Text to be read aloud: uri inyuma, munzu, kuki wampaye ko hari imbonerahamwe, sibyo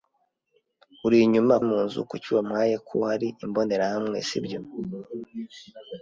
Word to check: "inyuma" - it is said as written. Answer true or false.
true